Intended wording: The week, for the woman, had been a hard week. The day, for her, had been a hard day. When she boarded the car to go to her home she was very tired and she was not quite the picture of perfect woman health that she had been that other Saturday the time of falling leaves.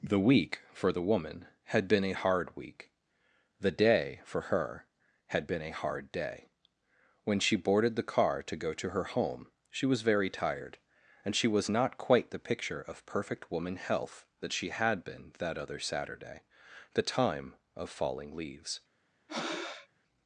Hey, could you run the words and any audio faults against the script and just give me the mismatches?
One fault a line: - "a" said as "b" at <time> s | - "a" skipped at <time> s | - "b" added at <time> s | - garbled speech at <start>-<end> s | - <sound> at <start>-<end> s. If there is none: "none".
- breath at 19.3-19.9 s